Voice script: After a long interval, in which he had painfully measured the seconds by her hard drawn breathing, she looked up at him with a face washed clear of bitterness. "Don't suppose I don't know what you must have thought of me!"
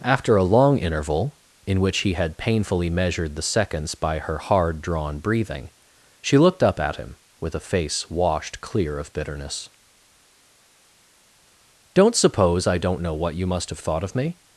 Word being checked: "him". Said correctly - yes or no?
yes